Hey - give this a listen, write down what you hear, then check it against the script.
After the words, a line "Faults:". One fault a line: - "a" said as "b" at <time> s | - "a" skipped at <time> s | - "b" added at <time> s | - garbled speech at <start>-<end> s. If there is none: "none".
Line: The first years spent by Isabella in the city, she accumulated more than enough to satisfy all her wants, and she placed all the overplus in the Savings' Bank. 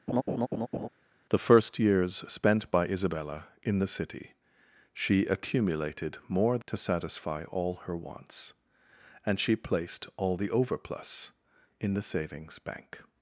The first years spent by Isabella in the city, she accumulated more to satisfy all her wants, and she placed all the overplus in the Savings' Bank.
Faults:
- "than enough" skipped at 6.6 s